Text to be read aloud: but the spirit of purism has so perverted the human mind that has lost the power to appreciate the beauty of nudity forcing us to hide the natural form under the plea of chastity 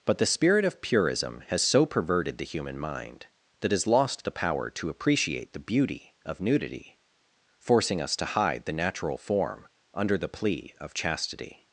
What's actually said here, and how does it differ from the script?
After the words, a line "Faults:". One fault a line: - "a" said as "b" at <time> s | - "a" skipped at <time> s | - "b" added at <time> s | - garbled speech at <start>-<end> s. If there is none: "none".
but the spirit of purism has so perverted the human mind that has lost the power to appreciate the beauty of nudity forcing us to hide the natural form under the plea of chastity
Faults:
none